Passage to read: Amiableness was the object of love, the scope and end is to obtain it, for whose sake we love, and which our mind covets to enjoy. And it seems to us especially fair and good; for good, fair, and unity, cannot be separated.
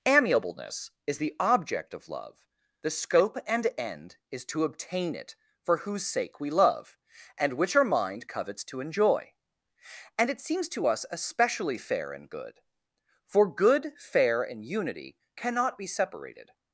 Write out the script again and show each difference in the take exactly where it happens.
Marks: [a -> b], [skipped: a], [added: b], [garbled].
Amiableness [was -> is] the object of love, the scope and end is to obtain it, for whose sake we love, and which our mind covets to enjoy. And it seems to us especially fair and good; for good, fair, and unity, cannot be separated.